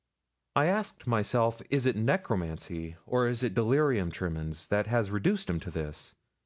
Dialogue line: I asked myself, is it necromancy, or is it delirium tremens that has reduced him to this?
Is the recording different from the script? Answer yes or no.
no